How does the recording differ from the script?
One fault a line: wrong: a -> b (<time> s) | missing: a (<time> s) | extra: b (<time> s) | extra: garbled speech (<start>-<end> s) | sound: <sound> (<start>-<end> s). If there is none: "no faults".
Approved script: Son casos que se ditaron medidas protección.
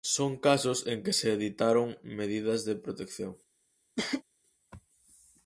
extra: en (0.9 s)
extra: de (2.6 s)
sound: cough (4.0-4.2 s)